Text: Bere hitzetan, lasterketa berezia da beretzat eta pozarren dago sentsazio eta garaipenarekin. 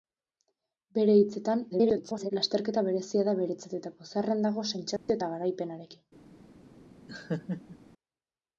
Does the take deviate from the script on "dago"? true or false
false